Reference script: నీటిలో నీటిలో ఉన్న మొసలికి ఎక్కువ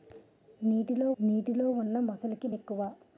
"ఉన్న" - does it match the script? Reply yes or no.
yes